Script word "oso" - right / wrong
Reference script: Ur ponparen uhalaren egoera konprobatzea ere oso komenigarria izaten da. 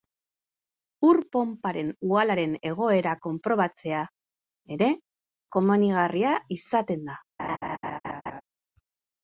wrong